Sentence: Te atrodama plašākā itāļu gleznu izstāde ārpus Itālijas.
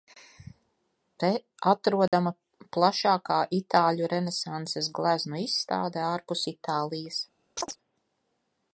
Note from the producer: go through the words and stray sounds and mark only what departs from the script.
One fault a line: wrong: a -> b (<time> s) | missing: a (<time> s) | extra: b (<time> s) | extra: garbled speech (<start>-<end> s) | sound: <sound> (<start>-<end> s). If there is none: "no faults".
sound: dropout (2.1-2.1 s)
extra: renesanses (4.2 s)
sound: chirp (7.6-7.8 s)